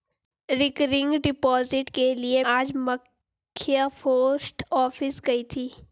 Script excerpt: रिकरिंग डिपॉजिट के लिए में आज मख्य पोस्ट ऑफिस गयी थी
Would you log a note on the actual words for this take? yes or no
yes